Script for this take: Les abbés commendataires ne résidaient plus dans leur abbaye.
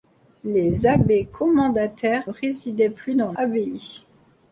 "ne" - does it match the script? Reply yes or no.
no